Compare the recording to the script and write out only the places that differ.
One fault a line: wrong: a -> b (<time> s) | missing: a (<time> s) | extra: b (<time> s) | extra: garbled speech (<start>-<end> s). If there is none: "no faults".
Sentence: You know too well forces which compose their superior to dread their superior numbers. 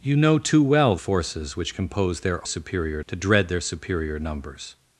no faults